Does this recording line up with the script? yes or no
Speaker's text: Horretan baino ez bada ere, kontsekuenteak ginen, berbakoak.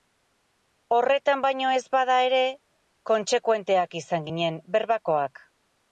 no